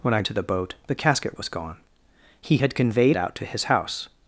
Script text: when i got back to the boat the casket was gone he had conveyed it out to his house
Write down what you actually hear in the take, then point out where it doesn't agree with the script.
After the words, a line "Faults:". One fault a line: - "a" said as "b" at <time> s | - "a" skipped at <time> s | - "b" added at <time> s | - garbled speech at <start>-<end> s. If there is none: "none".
when i to the boat the casket was gone he had conveyed out to his house
Faults:
- "got back" skipped at 0.2 s
- "it" skipped at 3.2 s